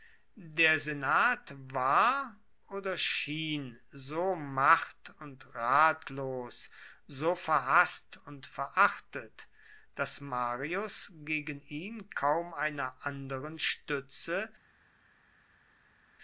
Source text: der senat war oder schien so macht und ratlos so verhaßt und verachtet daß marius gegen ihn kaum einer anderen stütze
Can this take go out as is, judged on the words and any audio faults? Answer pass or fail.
pass